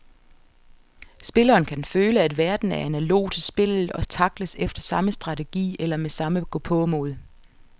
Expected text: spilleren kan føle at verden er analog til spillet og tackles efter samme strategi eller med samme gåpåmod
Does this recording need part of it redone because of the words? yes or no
no